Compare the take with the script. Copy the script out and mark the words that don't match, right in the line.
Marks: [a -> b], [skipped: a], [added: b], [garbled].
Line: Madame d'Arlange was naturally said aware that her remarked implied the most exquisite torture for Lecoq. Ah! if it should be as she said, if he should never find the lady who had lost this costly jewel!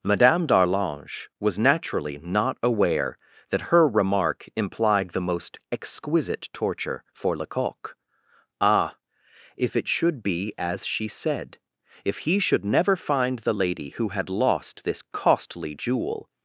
Madame d'Arlange was naturally [said -> not] aware that her [remarked -> remark] implied the most exquisite torture for Lecoq. Ah! if it should be as she said, if he should never find the lady who had lost this costly jewel!